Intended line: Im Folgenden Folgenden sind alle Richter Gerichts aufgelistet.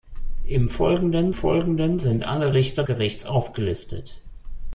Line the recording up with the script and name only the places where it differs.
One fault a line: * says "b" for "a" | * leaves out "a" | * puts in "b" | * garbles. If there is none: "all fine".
all fine